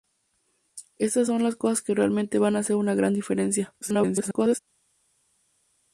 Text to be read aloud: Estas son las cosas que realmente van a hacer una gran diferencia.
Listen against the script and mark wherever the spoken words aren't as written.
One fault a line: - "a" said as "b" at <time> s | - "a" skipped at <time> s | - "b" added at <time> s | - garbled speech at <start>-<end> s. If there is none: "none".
- garbled speech at 3.8-4.6 s